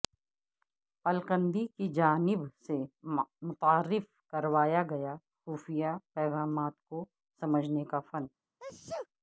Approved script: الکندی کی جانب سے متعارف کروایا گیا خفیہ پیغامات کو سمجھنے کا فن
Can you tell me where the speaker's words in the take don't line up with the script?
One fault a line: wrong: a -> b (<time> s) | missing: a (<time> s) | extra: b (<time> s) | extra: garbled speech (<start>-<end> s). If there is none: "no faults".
no faults